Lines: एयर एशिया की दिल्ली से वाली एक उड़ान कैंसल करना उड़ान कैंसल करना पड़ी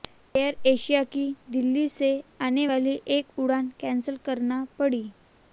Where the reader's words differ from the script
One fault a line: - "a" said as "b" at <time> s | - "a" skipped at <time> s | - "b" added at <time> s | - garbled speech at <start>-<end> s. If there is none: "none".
- "आने" added at 2.4 s
- "उड़ान कैंसल करना" skipped at 4.6 s